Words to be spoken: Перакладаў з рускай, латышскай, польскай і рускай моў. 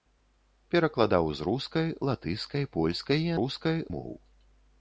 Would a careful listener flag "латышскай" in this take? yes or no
no